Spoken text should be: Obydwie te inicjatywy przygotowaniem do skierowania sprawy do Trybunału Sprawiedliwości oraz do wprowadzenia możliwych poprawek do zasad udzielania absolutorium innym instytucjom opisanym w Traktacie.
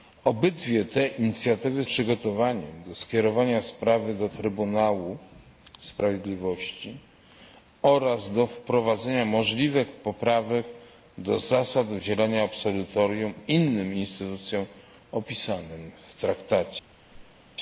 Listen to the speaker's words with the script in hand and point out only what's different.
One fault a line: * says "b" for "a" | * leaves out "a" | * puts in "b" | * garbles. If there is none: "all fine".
all fine